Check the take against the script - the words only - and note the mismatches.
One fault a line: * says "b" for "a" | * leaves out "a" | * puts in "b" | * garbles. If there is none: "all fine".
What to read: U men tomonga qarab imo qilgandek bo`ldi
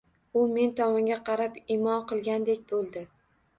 all fine